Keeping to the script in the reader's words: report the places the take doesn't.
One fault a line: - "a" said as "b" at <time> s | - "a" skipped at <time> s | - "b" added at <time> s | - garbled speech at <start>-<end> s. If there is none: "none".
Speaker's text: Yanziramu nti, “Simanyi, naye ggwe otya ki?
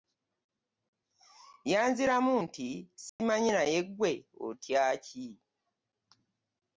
none